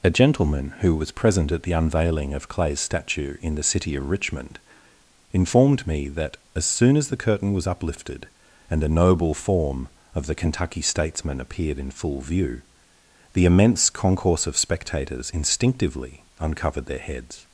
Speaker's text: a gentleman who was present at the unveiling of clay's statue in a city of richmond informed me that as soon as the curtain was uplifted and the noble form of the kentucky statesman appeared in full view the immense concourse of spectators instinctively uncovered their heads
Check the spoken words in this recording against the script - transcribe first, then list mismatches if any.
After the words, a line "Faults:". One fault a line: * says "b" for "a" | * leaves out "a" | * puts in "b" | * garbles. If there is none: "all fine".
a gentleman who was present at the unveiling of clay's statue in the city of richmond informed me that as soon as the curtain was uplifted and the noble form of the kentucky statesman appeared in full view the immense concourse of spectators instinctively uncovered their heads
Faults:
* says "the" for "a"